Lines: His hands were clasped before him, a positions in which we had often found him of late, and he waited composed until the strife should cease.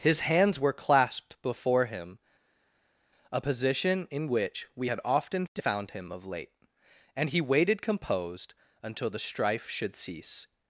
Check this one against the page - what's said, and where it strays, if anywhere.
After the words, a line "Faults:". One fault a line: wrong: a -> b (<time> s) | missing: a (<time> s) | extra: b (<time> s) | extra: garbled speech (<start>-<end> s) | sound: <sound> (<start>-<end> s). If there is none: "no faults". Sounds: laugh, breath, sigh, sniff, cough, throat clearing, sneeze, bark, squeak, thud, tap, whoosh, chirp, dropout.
His hands were clasped before him, a position in which we had often found him of late, and he waited composed until the strife should cease.
Faults:
wrong: positions -> position (3.4 s)